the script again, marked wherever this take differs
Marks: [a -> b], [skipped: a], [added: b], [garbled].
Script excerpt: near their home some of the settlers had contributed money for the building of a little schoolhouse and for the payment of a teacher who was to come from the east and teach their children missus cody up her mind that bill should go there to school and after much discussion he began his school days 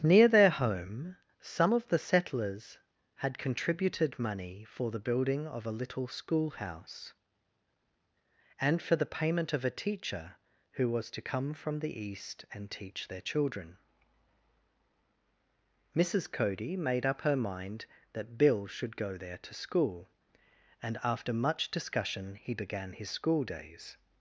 near their home some of the settlers had contributed money for the building of a little schoolhouse and for the payment of a teacher who was to come from the east and teach their children missus cody [added: made] up her mind that bill should go there to school and after much discussion he began his school days